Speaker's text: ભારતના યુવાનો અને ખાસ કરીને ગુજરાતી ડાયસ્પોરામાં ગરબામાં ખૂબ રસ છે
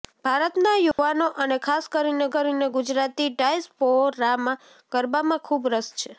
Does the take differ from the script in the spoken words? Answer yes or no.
yes